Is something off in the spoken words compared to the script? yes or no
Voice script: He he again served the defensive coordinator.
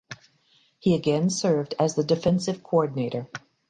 yes